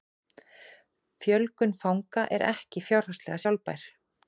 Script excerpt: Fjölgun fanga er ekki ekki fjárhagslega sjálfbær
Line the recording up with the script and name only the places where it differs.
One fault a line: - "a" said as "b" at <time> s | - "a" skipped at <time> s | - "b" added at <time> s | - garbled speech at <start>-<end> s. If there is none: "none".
- "ekki" skipped at 2.9 s